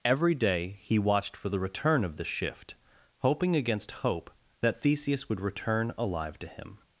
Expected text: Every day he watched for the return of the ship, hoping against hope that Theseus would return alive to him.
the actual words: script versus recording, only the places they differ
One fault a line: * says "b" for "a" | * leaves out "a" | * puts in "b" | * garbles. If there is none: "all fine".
* says "shift" for "ship"